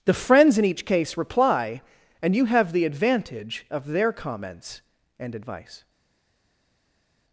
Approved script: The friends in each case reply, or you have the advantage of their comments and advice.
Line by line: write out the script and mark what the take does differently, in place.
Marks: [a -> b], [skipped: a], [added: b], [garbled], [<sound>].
The friends in each case reply, [or -> and] you have the advantage of their comments and advice.